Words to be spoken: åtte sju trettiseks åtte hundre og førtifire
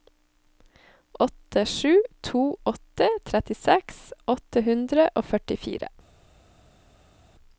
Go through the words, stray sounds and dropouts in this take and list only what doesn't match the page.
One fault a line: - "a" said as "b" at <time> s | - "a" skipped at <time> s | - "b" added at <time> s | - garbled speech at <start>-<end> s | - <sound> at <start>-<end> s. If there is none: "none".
- "to åtte" added at 2.2 s